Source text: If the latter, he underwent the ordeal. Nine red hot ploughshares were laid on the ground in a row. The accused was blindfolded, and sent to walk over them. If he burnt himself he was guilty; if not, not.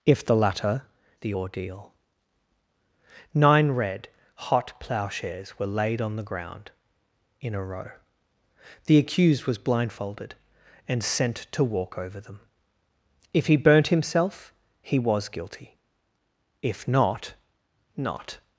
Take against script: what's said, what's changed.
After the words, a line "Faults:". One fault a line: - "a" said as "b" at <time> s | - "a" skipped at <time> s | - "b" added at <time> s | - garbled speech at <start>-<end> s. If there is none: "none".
If the latter, the ordeal. Nine red hot ploughshares were laid on the ground in a row. The accused was blindfolded, and sent to walk over them. If he burnt himself he was guilty; if not, not.
Faults:
- "he underwent" skipped at 0.9 s